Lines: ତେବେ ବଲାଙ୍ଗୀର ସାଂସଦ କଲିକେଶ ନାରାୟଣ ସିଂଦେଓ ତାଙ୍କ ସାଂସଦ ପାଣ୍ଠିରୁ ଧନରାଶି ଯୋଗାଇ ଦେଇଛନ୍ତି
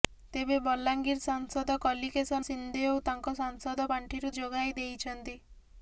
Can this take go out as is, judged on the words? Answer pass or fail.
fail